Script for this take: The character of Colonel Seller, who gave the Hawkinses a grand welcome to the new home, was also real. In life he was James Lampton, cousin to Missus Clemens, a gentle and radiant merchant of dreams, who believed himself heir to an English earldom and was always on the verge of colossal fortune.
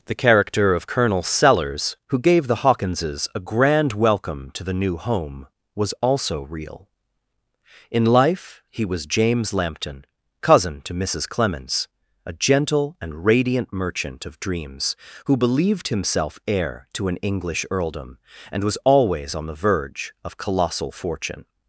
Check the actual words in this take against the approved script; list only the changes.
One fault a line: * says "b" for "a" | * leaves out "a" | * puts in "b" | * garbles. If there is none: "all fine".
* says "Sellers" for "Seller"